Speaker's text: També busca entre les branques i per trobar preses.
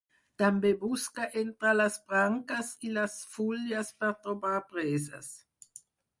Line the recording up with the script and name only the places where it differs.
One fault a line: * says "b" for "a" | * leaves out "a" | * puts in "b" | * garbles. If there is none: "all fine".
* puts in "les fulles"